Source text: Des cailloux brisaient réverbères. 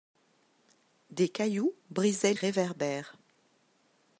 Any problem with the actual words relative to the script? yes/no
no